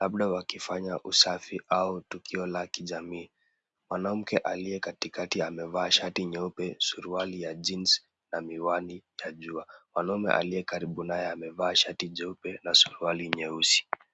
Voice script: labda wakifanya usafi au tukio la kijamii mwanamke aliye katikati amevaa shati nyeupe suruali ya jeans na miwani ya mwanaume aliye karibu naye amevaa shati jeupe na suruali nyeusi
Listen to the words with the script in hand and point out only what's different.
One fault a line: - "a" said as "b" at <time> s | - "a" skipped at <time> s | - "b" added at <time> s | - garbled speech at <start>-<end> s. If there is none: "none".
- "jua" added at 9.3 s